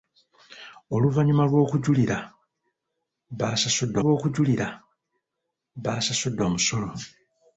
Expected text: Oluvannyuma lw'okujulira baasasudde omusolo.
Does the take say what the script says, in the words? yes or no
no